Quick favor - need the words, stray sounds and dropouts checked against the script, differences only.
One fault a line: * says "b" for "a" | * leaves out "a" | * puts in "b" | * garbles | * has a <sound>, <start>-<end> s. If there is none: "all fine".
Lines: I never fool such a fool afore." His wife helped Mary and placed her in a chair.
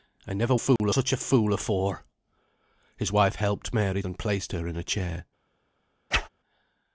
* has a dropout, 0.8-0.8 s
* has a whoosh, 6.1-6.3 s